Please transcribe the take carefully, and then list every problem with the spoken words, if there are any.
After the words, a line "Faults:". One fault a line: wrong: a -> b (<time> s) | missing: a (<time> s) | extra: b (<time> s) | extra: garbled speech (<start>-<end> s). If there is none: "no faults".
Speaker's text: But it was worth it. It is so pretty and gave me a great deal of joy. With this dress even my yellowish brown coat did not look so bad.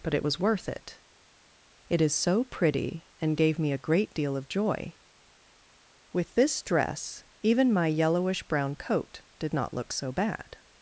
But it was worth it. It is so pretty and gave me a great deal of joy. With this dress even my yellowish brown coat did not look so bad.
Faults:
no faults